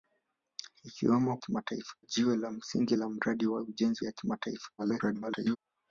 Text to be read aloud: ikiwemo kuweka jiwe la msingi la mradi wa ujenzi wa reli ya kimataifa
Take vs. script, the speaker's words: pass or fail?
fail